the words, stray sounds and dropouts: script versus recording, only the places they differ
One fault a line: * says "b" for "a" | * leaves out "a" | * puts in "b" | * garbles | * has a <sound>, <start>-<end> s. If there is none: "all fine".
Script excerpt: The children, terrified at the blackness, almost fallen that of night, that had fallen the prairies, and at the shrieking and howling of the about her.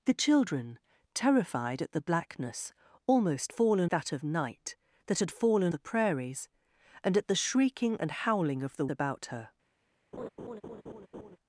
* has a laugh, 10.1-11.4 s